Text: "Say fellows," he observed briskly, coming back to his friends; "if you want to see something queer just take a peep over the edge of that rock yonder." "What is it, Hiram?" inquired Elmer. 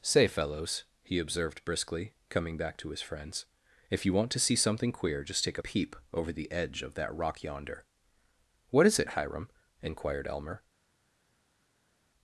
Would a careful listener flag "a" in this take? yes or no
yes